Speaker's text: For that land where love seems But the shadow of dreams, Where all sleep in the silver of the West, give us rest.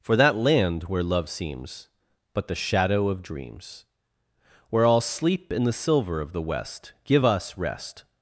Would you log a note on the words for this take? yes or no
no